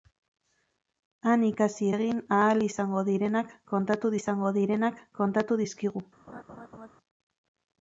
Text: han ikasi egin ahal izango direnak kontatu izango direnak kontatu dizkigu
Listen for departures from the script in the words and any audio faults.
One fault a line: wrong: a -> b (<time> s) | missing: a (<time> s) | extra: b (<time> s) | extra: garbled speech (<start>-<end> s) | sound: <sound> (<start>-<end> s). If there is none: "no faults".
sound: laugh (6.3-6.9 s)